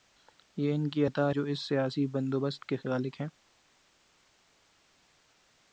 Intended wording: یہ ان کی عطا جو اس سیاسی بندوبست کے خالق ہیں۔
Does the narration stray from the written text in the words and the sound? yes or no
no